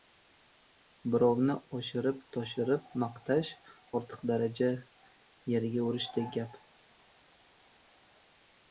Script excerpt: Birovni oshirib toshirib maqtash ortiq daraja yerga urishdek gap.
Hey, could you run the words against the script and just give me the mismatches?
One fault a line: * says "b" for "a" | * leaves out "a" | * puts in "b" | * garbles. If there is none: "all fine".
all fine